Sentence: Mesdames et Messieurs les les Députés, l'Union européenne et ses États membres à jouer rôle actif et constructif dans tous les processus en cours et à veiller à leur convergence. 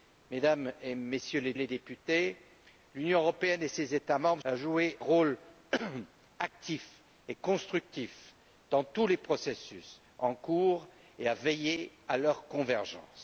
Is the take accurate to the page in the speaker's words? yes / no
yes